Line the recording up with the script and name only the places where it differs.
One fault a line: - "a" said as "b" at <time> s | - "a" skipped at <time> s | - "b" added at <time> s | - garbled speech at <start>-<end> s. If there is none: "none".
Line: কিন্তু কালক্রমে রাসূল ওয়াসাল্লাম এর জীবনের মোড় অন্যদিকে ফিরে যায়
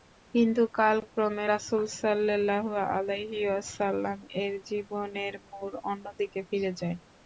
- "সাল্লাল্লাহু আলাইহি" added at 2.0 s